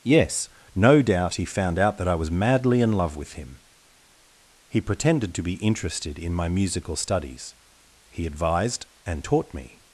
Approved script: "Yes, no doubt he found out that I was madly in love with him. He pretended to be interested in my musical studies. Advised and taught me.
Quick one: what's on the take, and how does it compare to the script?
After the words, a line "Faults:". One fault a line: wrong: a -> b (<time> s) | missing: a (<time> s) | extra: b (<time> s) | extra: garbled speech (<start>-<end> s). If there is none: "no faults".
"Yes, no doubt he found out that I was madly in love with him. He pretended to be interested in my musical studies. He advised and taught me.
Faults:
extra: He (8.1 s)